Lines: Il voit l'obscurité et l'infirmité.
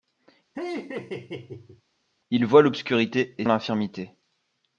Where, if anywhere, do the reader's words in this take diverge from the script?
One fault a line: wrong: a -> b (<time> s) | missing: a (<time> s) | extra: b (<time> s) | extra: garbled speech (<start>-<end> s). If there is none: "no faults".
no faults